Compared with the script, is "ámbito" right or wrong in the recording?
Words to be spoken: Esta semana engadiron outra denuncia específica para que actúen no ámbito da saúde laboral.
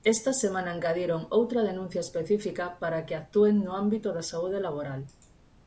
right